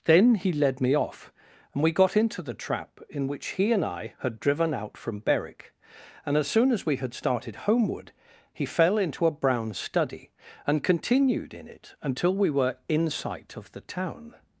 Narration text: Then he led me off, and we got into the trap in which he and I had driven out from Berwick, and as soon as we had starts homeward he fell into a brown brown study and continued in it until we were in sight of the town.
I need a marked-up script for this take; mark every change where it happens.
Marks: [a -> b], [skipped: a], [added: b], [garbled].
Then he led me off, and we got into the trap in which he and I had driven out from Berwick, and as soon as we had [starts -> started] homeward he fell into a brown [skipped: brown] study and continued in it until we were in sight of the town.